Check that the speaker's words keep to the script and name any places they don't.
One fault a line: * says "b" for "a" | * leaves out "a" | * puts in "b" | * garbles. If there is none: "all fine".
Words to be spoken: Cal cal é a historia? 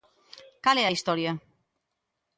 * leaves out "cal"